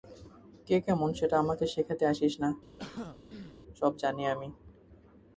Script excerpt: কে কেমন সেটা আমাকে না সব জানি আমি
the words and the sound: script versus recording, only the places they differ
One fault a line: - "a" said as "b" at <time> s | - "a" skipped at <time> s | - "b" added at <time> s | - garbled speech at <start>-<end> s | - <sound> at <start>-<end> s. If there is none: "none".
- "শেখাতে আসিস" added at 1.7 s
- throat clearing at 2.8-3.6 s